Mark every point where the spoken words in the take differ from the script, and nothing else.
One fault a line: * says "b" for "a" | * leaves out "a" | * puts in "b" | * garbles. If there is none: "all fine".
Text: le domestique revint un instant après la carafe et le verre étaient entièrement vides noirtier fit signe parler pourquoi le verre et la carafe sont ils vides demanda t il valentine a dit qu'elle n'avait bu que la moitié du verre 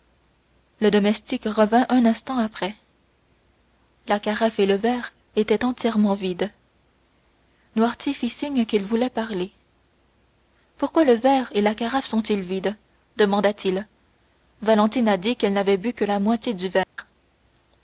* puts in "qu'il voulait"